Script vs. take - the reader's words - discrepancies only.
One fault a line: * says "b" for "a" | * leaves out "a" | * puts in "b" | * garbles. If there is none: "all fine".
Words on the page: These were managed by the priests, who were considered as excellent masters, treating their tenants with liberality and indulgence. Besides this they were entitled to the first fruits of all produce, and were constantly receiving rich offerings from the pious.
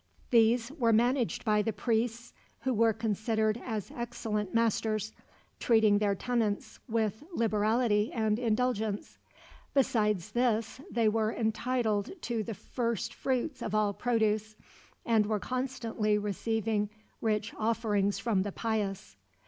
all fine